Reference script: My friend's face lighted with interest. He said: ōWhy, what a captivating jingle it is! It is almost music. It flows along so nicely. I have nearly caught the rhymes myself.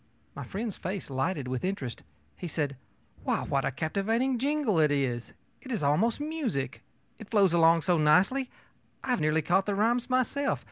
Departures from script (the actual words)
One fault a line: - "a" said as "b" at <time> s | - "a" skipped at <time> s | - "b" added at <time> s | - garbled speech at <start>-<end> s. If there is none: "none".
none